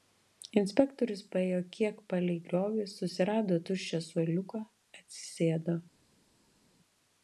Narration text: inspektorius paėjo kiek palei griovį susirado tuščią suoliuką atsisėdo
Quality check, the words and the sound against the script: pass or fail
pass